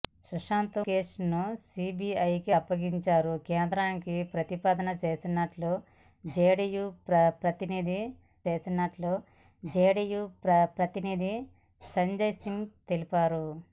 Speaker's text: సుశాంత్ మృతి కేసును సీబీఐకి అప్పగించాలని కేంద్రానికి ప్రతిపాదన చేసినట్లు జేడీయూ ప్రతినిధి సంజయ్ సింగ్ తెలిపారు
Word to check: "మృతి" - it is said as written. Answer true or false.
false